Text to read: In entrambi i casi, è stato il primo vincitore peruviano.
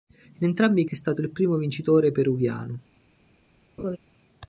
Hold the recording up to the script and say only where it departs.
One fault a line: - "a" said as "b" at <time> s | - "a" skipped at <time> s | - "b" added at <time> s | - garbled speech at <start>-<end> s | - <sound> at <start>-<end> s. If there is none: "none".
- "casi" skipped at 0.8 s
- laugh at 3.8-4.0 s